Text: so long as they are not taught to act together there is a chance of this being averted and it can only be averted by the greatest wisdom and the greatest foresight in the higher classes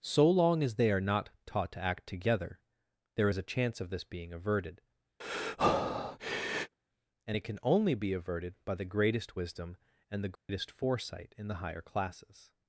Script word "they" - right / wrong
right